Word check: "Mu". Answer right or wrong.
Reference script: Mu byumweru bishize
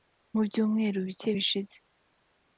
right